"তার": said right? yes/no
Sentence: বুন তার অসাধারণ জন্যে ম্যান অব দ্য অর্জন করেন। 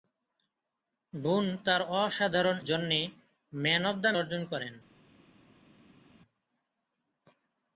yes